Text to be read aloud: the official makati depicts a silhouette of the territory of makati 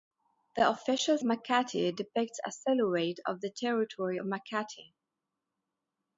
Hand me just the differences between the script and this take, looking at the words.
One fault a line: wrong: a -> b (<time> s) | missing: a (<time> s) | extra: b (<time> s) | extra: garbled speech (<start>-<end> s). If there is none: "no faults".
no faults